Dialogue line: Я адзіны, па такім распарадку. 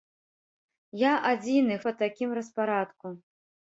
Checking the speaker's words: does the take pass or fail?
pass